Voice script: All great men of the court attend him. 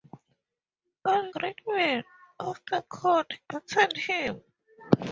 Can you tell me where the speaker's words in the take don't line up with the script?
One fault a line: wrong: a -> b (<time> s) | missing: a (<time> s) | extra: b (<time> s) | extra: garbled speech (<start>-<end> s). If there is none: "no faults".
no faults